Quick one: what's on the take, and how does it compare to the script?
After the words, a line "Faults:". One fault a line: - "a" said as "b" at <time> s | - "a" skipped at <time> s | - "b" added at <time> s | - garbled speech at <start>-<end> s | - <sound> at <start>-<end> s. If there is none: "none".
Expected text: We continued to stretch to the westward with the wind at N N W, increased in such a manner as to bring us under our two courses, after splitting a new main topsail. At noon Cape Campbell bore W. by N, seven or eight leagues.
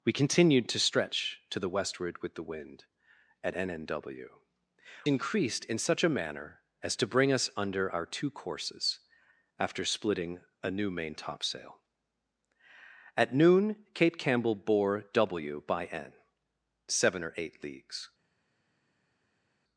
We continued to stretch to the westward with the wind at N N W, increased in such a manner as to bring us under our two courses, after splitting a new main topsail. At noon Cape Campbell bore W. by N, seven or eight leagues.
Faults:
none